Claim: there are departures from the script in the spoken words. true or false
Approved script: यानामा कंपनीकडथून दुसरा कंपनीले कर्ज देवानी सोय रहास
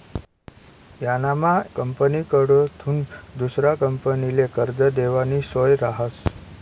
false